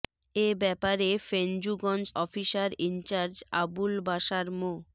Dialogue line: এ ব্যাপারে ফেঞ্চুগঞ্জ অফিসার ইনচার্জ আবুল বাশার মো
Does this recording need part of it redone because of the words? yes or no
no